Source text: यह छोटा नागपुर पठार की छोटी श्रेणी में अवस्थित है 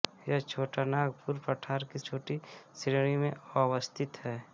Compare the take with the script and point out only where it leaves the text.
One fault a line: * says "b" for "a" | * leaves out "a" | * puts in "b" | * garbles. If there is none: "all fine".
all fine